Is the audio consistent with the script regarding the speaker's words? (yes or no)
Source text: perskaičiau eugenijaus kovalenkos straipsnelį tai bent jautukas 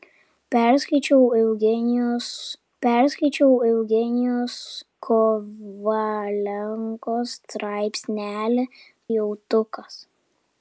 no